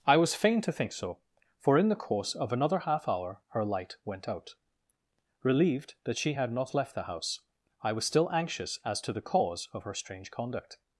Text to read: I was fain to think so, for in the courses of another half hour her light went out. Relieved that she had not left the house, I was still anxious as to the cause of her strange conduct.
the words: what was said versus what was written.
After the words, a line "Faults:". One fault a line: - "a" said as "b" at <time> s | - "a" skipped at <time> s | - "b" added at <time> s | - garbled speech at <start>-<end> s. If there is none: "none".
I was fain to think so, for in the course of another half hour her light went out. Relieved that she had not left the house, I was still anxious as to the cause of her strange conduct.
Faults:
- "courses" said as "course" at 1.9 s